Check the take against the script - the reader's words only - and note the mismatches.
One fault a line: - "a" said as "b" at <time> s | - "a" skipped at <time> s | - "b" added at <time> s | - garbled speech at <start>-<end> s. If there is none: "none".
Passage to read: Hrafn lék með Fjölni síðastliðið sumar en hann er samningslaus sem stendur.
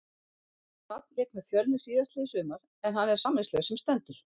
none